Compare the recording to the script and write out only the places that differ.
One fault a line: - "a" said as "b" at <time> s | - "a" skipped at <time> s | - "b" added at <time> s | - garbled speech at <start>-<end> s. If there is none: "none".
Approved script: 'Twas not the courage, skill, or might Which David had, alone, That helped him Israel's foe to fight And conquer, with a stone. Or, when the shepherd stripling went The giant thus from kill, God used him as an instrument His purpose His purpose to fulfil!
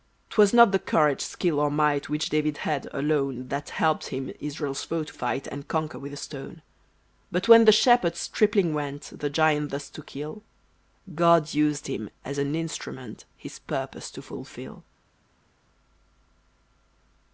- "Or" said as "But" at 7.3 s
- "from" said as "to" at 9.9 s
- "His purpose" skipped at 14.1 s